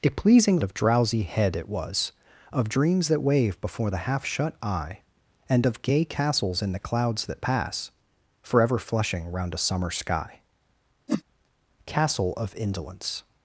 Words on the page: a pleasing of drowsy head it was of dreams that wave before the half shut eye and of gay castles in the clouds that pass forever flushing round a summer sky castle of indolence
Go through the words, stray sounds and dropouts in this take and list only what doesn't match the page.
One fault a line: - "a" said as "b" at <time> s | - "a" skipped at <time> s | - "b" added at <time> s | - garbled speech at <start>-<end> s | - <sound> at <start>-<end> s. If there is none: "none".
- whoosh at 11.1-11.2 s